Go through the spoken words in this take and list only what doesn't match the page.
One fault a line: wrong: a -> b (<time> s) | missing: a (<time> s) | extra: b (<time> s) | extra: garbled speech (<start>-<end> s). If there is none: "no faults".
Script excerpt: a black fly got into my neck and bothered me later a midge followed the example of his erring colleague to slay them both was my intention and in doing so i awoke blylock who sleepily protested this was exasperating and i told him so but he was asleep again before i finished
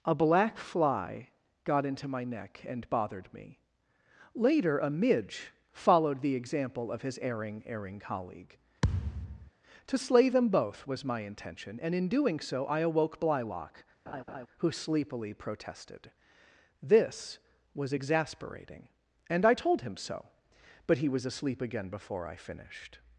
extra: erring (7.6 s)